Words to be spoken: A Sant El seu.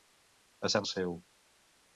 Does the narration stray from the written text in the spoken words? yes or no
no